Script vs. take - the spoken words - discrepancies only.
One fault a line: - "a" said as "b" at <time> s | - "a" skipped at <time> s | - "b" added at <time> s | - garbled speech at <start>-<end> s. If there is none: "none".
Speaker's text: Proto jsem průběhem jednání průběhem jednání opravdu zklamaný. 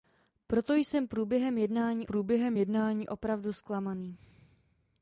none